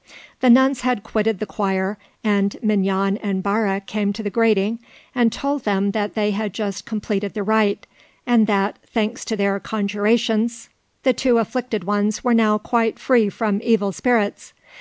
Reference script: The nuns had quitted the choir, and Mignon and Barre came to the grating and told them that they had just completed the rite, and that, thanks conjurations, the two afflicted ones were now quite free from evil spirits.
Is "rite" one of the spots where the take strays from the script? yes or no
no